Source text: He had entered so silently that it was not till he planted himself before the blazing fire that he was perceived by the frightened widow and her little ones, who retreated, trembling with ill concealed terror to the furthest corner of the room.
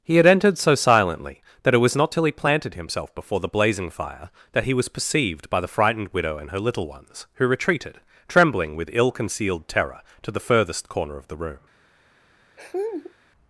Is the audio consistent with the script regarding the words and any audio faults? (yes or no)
no